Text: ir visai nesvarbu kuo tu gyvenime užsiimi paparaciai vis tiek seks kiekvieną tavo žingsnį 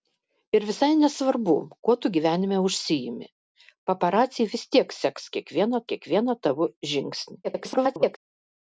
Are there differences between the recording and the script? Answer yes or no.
yes